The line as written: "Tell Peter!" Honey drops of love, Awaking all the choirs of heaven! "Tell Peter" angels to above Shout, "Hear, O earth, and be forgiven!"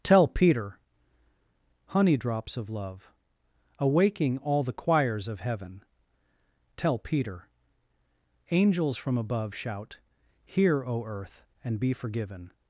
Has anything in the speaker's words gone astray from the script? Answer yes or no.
yes